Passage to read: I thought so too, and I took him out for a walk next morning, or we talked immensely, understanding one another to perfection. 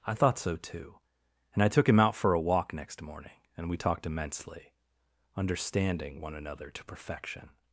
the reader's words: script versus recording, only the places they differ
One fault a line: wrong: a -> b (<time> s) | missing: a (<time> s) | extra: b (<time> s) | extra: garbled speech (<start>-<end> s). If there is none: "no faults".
wrong: or -> and (3.5 s)